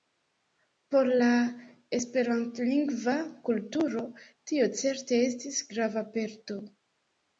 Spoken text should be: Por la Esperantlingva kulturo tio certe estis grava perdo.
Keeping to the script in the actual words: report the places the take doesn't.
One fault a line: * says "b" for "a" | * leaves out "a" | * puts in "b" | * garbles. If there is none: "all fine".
all fine